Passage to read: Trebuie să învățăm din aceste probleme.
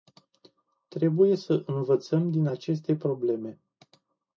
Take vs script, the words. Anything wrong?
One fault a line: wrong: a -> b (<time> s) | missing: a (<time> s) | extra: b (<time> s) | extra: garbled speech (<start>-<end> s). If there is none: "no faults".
no faults